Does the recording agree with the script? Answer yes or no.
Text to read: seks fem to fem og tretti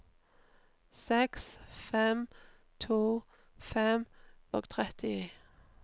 yes